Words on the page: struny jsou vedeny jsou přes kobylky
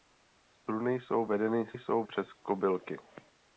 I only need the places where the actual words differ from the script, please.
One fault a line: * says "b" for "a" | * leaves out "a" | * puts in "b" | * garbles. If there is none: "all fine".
all fine